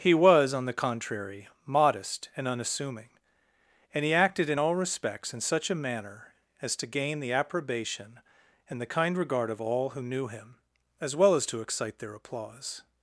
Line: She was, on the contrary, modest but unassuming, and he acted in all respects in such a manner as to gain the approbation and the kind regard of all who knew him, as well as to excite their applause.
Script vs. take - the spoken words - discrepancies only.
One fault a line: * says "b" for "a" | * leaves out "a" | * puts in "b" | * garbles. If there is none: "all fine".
* says "He" for "She"
* says "and" for "but"